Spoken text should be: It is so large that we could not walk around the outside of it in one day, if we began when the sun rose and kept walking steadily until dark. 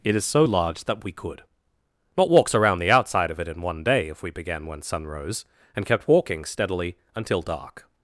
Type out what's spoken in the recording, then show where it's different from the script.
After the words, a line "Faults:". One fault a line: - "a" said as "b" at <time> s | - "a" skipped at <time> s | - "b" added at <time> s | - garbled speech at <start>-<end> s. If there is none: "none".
It is so large that we could not walks around the outside of it in one day, if we began when sun rose and kept walking steadily until dark.
Faults:
- "walk" said as "walks" at 2.3 s
- "the" skipped at 4.8 s